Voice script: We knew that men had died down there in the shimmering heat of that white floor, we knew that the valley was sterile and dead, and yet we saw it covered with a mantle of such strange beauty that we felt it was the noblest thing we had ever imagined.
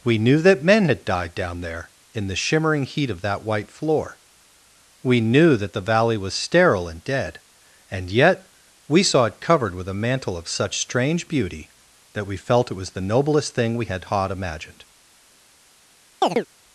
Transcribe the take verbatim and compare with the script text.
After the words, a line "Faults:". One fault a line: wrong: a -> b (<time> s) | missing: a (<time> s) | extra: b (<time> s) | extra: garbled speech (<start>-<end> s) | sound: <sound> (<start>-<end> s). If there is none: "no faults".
We knew that men had died down there in the shimmering heat of that white floor, we knew that the valley was sterile and dead, and yet we saw it covered with a mantle of such strange beauty that we felt it was the noblest thing we had hod imagined.
Faults:
wrong: ever -> hod (14.1 s)
sound: chirp (16.2-16.5 s)